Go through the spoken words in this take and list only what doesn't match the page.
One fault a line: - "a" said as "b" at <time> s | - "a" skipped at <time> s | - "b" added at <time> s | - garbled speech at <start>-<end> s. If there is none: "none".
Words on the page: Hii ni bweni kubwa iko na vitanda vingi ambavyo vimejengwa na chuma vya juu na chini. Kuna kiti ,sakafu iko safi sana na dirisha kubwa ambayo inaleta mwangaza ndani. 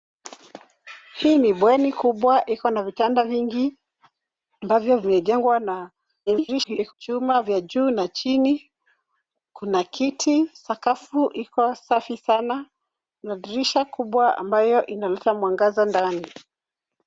- garbled speech at 6.3-6.9 s